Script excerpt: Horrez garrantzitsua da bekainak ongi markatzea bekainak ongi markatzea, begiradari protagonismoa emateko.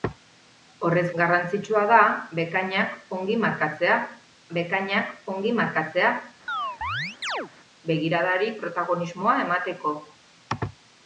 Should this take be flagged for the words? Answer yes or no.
no